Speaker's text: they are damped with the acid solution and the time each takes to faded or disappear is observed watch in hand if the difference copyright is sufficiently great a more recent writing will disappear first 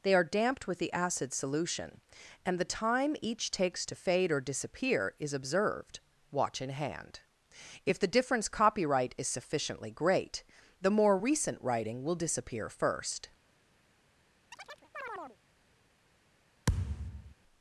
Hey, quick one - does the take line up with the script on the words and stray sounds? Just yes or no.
no